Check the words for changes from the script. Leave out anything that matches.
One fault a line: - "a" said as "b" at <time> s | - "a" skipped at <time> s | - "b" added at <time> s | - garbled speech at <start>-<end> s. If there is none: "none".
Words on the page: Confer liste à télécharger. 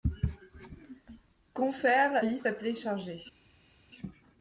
none